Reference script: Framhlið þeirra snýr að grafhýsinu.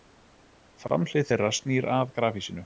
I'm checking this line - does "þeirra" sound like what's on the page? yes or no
yes